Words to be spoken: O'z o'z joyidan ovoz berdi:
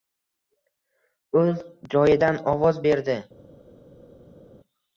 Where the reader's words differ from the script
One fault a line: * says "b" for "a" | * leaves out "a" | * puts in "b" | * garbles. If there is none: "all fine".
* leaves out "o'z"